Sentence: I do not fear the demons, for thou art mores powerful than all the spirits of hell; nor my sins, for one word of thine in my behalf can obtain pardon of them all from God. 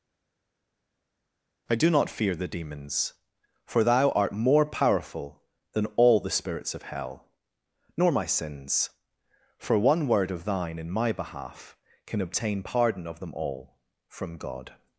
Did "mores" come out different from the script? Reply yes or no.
yes